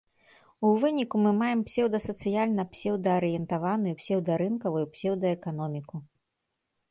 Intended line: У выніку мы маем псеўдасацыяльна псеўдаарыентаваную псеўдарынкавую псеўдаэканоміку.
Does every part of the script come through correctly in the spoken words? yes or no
yes